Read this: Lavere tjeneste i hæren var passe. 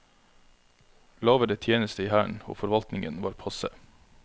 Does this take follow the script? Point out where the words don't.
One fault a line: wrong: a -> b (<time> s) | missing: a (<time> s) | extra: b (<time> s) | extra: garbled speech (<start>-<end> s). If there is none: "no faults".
extra: og forvaltningen (2.5 s)